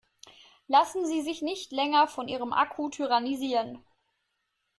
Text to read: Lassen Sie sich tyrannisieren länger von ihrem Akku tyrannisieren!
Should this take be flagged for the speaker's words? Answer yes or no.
yes